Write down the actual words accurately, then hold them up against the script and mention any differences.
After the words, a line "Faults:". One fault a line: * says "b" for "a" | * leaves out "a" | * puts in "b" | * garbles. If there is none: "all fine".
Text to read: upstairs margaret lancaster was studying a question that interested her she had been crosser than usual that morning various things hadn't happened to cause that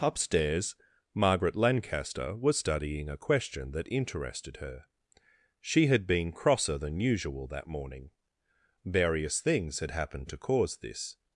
upstairs margaret lancaster was studying a question that interested her she had been crosser than usual that morning various things had happened to cause this
Faults:
* says "had" for "hadn't"
* says "this" for "that"